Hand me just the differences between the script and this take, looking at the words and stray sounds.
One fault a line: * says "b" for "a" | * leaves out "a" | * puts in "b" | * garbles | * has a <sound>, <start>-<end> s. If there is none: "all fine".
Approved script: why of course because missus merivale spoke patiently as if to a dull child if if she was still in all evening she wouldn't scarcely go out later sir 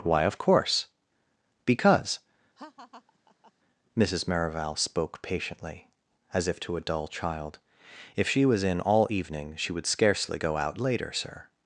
* has a laugh, 2.6-3.5 s
* leaves out "if"
* leaves out "still"
* says "would" for "wouldn't"